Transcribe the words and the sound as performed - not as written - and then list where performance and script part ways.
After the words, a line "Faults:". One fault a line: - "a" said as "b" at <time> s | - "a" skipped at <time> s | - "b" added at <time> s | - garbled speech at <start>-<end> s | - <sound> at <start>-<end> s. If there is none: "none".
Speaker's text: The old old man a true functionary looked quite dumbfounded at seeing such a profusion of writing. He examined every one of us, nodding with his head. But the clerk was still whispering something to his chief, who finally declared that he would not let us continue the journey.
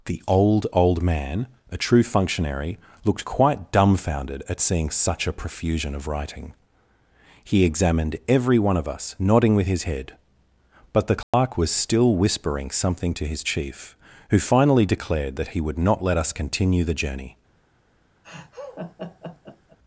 The old old man a true functionary looked quite dumbfounded at seeing such a profusion of writing. He examined every one of us, nodding with his head. But the clerk was still whispering something to his chief, who finally declared that he would not let us continue the journey.
Faults:
- dropout at 11.2-11.3 s
- laugh at 18.2-19.8 s